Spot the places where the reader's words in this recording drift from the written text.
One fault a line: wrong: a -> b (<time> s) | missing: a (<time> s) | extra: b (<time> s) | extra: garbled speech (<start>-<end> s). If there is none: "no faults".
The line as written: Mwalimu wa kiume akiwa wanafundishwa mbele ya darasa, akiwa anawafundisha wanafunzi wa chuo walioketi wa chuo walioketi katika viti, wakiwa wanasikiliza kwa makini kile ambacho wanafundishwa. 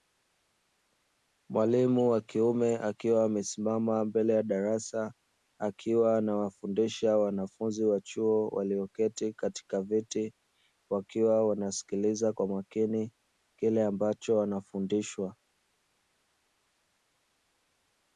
wrong: wanafundishwa -> amesimama (3.2 s)
missing: wa chuo walioketi (9.3 s)